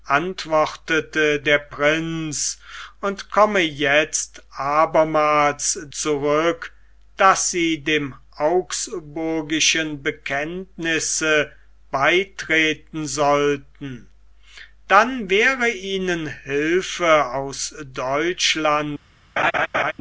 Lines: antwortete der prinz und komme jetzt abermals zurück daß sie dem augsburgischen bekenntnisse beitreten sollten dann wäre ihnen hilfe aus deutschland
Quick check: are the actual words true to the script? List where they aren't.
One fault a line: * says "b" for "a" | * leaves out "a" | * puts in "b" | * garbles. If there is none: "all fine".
all fine